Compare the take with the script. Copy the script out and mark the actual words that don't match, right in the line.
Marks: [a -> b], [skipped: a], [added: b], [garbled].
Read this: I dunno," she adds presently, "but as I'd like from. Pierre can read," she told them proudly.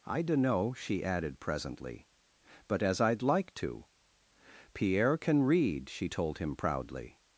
I dunno," she [adds -> added] presently, "but as I'd like [from. -> to] Pierre can read," she told [them -> him] proudly.